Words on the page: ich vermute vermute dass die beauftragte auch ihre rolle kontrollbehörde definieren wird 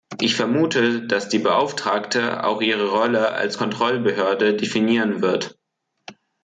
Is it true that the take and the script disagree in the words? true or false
true